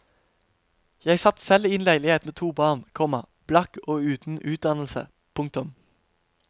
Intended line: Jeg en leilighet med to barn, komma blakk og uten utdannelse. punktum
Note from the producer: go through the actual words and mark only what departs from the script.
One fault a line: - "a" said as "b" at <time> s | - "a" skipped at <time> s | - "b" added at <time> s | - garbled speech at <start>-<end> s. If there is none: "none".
- "satt selv i" added at 1.2 s